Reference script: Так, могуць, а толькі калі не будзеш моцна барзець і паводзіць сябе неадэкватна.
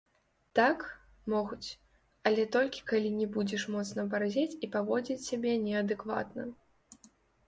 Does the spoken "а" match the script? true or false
false